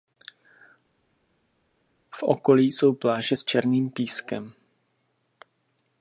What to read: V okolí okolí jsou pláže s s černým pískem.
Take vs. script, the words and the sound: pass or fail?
fail